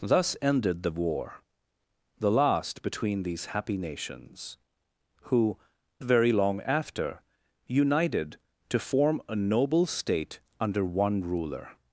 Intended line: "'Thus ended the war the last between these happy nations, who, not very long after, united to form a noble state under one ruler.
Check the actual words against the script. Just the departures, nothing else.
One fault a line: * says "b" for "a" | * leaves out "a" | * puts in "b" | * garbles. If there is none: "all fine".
* leaves out "not"